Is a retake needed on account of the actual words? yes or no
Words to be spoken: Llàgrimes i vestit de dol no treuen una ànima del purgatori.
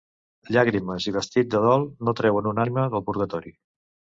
no